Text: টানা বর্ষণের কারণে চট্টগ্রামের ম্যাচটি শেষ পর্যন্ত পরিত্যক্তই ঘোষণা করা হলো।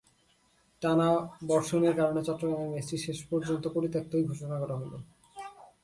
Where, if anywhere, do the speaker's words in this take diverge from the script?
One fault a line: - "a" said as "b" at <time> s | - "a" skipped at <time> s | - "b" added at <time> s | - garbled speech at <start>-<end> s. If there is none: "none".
none